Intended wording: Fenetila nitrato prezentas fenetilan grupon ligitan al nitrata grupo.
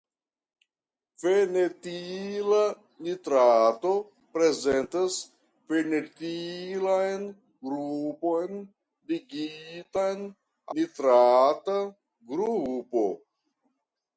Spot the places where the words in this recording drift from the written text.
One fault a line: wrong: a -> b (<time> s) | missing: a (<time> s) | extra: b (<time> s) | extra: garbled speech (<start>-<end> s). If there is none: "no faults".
missing: al (10.2 s)